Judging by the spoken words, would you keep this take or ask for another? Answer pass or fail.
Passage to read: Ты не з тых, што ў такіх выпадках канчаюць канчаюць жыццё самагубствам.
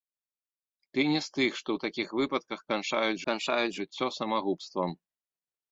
pass